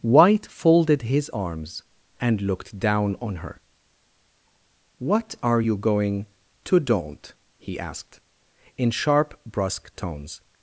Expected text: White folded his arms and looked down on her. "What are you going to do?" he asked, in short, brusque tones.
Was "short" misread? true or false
true